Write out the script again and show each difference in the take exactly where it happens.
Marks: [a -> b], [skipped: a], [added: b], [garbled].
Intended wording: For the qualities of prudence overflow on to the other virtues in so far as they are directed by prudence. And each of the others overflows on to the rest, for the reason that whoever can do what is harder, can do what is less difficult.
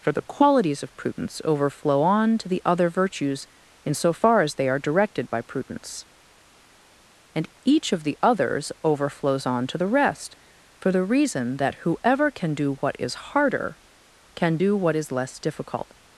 For the qualities of prudence overflow on to the other virtues in so far as they are directed by prudence. And each of the others overflows on to the rest, for the reason that whoever can do what is harder, can do what is less difficult.